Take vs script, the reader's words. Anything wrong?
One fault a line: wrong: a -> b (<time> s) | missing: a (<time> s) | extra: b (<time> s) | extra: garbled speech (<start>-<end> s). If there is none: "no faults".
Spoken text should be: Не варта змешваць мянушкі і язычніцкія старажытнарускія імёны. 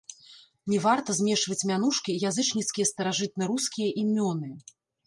no faults